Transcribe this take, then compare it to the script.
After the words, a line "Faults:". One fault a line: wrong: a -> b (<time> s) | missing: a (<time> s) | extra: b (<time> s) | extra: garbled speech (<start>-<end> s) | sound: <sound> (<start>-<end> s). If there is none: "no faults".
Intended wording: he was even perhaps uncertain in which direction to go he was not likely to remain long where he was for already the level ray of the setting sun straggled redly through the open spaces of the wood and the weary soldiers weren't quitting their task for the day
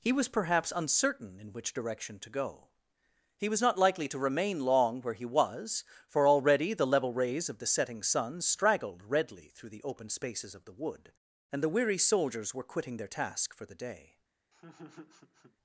he was perhaps uncertain in which direction to go he was not likely to remain long where he was for already the level rays of the setting sun straggled redly through the open spaces of the wood and the weary soldiers were quitting their task for the day
Faults:
missing: even (0.3 s)
wrong: ray -> rays (7.1 s)
wrong: weren't -> were (12.5 s)
sound: laugh (14.5-15.6 s)